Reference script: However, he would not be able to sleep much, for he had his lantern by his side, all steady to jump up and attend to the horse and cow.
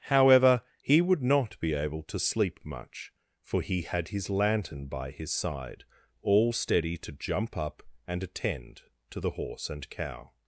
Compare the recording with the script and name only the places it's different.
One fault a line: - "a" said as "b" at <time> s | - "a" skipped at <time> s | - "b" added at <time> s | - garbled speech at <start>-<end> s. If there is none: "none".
none